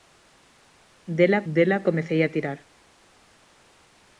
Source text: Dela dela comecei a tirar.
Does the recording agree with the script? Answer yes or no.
yes